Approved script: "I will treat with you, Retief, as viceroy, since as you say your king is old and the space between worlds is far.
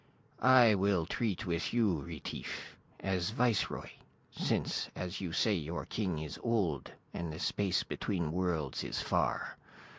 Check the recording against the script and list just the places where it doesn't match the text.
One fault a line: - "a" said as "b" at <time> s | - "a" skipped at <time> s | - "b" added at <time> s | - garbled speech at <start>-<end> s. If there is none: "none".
none